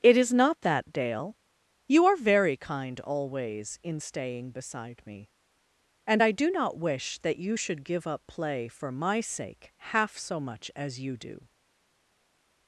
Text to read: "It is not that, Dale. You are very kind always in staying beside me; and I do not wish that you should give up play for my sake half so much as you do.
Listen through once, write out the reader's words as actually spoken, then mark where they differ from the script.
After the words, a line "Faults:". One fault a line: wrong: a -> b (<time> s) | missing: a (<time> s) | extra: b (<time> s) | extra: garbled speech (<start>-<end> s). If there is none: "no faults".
"It is not that, Dale. You are very kind always in staying beside me; and I do not wish that you should give up play for my sake half so much as you do.
Faults:
no faults